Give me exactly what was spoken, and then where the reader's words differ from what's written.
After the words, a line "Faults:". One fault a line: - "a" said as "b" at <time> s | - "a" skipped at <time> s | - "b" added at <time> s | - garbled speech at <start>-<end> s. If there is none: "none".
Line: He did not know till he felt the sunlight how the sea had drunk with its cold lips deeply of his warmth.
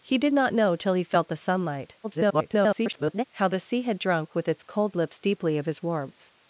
He did not know till he felt the sunlight [garbled] how the sea had drunk with its cold lips deeply of his warmth.
Faults:
- garbled speech at 2.0-3.2 s